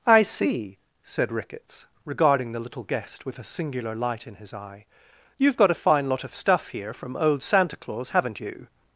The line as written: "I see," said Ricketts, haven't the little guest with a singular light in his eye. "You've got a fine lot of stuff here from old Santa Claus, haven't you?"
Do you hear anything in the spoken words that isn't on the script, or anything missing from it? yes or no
yes